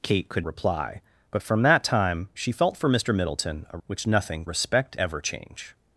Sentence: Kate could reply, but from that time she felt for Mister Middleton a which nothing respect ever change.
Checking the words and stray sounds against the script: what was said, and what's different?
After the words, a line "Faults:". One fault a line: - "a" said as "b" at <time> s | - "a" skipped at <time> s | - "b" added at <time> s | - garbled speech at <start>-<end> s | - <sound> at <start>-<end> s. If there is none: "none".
Kate could reply, but from that time she felt for Mister Middleton a which nothing respect ever change.
Faults:
none